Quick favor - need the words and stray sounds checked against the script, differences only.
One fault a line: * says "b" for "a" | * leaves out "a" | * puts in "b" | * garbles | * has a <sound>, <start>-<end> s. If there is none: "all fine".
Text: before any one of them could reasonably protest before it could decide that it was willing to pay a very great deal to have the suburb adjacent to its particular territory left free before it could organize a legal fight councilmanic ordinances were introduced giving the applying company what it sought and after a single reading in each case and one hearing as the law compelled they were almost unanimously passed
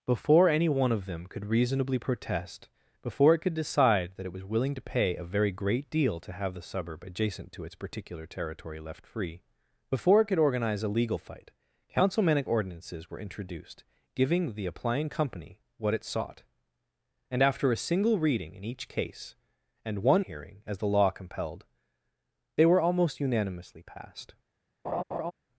* has a laugh, 24.8-25.3 s